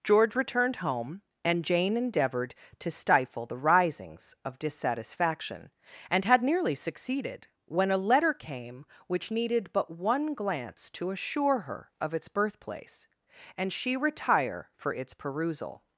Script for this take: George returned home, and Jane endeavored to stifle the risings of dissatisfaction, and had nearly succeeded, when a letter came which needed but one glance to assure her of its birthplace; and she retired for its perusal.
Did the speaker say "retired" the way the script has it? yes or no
no